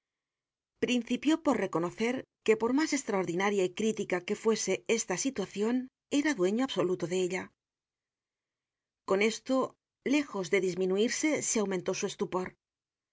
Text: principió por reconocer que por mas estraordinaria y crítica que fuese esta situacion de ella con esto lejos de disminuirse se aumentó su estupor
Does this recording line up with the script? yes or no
no